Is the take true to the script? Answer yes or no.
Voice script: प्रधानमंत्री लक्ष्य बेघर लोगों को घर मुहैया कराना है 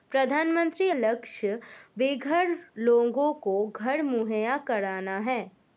yes